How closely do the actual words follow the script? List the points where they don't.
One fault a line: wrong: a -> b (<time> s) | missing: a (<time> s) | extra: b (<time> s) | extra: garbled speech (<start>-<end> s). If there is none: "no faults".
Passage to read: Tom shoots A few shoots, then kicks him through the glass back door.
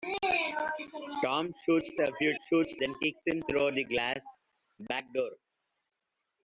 no faults